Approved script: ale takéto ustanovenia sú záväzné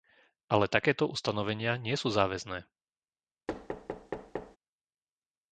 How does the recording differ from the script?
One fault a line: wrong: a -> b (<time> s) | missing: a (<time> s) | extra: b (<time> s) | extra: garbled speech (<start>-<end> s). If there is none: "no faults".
extra: nie (1.8 s)